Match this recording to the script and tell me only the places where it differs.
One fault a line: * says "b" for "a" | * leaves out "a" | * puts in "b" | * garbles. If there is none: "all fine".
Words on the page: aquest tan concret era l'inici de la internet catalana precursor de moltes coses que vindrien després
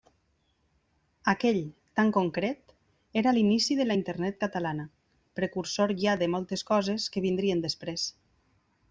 * says "aquell" for "aquest"
* puts in "ja"